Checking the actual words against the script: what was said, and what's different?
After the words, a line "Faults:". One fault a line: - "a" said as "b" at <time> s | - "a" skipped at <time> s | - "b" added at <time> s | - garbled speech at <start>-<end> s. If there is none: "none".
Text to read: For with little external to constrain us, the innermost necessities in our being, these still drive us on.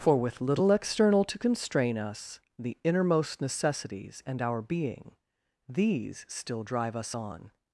For with little external to constrain us, the innermost necessities and our being, these still drive us on.
Faults:
- "in" said as "and" at 4.2 s